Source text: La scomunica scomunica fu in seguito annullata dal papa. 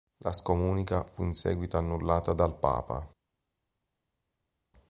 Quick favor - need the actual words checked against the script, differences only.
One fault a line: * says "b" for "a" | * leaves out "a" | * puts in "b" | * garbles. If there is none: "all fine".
* leaves out "scomunica"